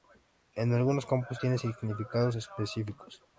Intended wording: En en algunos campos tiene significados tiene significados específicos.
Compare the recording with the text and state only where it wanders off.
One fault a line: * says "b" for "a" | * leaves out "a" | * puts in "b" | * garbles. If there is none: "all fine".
* leaves out "en"
* leaves out "tiene significados"